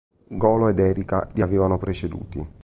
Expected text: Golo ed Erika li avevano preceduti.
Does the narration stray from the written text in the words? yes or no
no